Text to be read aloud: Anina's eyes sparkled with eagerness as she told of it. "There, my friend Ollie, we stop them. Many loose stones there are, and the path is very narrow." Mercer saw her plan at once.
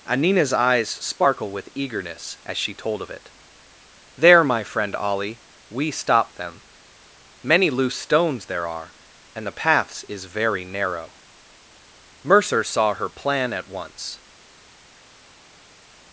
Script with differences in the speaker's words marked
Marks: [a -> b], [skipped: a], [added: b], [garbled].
Anina's eyes [sparkled -> sparkle] with eagerness as she told of it. "There, my friend Ollie, we stop them. Many loose stones there are, and the [path -> paths] is very narrow." Mercer saw her plan at once.